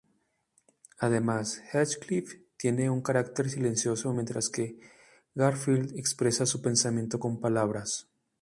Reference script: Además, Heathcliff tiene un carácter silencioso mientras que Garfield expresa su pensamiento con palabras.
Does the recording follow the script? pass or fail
pass